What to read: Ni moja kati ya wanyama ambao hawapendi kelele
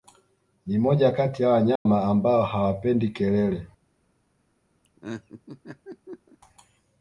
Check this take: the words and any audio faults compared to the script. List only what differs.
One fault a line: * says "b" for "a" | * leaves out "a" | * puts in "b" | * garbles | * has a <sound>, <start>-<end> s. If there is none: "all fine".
* has a dropout, 1.8-1.9 s
* has a laugh, 4.8-6.4 s